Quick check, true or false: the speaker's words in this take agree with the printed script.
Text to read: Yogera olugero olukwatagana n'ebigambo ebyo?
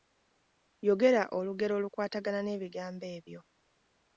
true